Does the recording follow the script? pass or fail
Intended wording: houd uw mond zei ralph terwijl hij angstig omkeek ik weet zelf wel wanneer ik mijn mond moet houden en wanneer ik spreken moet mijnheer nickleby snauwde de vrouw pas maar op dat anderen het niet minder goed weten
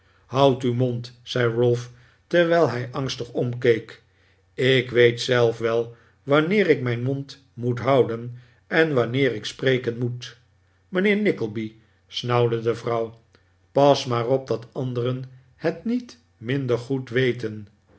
pass